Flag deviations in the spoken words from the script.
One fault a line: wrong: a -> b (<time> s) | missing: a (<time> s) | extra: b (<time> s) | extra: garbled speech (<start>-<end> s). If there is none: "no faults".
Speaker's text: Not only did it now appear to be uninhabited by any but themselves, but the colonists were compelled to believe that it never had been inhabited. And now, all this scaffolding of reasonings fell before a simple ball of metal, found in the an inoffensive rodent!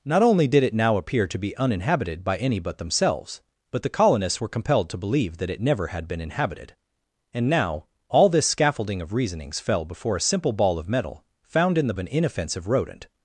no faults